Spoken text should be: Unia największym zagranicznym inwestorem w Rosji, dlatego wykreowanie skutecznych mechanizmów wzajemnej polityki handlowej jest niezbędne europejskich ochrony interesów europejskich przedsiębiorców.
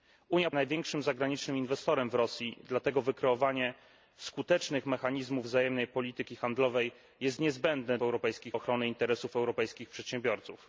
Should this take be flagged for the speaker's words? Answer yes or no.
no